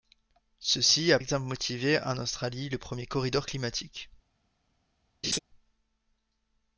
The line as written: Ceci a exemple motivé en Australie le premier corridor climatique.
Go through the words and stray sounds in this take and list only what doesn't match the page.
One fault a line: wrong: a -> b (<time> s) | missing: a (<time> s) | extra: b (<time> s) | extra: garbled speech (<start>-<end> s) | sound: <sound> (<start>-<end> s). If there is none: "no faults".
sound: laugh (5.2-5.4 s)